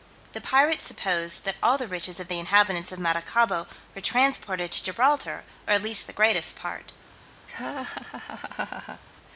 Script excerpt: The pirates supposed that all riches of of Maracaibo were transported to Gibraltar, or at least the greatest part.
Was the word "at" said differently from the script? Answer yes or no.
no